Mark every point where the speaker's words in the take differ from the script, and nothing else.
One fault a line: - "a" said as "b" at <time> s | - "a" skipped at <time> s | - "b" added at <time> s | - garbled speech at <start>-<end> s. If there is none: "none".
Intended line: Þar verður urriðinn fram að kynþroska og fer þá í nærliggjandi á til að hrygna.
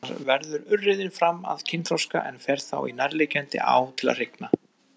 - "og" said as "en" at 2.3 s